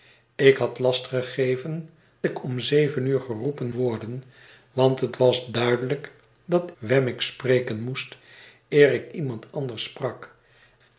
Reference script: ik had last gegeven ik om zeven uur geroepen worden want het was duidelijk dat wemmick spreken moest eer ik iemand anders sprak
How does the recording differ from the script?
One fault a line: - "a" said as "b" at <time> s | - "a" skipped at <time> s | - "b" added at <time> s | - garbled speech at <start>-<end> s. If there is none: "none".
none